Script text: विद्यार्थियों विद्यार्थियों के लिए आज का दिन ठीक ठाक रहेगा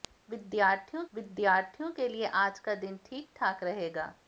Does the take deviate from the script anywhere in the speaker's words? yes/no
no